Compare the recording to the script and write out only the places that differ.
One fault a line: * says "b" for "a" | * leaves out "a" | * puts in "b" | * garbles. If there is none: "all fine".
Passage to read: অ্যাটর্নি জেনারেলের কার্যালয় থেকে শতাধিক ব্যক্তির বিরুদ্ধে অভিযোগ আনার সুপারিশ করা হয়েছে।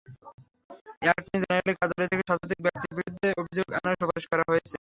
all fine